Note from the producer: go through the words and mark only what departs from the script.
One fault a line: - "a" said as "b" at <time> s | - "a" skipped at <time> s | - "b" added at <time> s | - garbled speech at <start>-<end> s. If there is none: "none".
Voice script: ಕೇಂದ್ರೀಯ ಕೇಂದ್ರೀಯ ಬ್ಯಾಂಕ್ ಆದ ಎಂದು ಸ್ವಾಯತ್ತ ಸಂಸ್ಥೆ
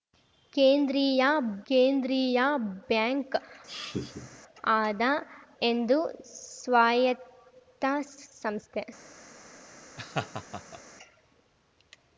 none